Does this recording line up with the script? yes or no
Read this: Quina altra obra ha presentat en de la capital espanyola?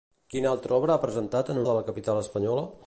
yes